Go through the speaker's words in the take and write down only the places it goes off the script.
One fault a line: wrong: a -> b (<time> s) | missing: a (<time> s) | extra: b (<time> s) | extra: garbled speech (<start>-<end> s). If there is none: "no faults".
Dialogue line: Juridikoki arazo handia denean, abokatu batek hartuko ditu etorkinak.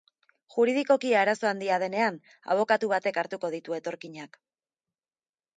no faults